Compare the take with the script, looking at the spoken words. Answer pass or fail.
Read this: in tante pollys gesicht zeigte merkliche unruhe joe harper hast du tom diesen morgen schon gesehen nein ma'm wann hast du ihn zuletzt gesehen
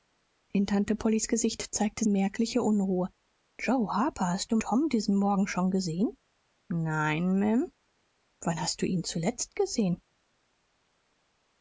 pass